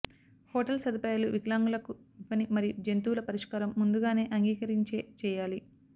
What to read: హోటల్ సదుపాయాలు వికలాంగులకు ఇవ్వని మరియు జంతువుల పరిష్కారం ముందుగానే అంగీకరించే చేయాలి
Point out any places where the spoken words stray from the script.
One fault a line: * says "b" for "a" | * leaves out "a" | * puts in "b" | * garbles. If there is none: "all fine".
all fine